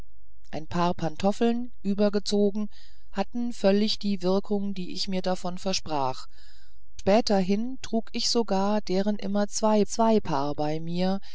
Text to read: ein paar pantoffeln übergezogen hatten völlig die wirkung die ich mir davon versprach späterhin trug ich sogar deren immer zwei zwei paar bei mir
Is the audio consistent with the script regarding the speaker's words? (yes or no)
yes